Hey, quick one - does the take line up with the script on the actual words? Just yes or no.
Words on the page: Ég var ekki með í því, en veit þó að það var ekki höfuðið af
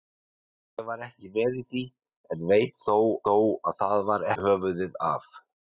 no